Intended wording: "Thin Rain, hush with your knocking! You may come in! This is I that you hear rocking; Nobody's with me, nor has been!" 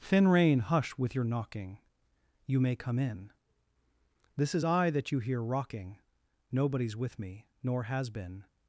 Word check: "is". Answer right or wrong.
right